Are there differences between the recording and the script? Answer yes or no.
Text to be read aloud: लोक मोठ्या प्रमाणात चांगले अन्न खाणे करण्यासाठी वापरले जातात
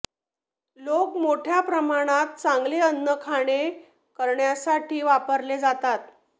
no